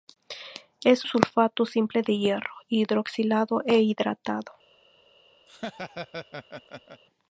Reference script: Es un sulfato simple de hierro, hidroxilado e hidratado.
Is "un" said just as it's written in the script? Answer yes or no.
no